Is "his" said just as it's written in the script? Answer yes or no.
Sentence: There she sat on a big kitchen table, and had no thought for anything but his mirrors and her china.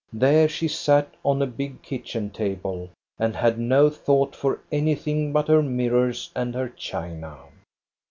no